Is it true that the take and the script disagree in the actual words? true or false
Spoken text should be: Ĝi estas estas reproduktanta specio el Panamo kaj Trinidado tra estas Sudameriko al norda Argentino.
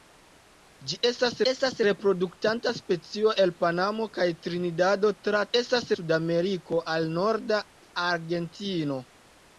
false